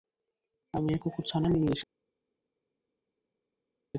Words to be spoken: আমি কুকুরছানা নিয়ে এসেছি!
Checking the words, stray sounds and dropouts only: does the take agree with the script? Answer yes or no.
yes